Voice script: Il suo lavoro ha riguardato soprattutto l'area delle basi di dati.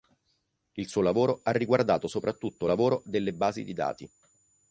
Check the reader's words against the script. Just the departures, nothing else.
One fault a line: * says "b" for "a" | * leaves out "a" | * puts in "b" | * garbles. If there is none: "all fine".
* says "lavoro" for "l'area"